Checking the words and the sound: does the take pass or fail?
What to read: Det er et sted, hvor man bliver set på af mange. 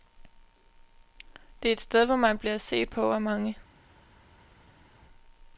pass